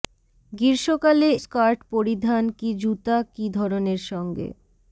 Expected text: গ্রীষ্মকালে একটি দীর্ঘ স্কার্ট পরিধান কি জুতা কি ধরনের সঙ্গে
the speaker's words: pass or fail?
fail